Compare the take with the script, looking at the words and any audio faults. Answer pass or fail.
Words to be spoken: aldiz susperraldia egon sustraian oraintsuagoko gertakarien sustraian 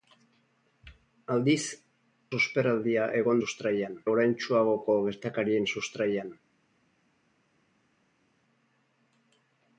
pass